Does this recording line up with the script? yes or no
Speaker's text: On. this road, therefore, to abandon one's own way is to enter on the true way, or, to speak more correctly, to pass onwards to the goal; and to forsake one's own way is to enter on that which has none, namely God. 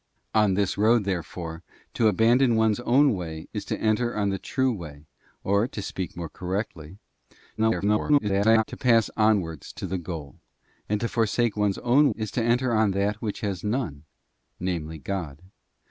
no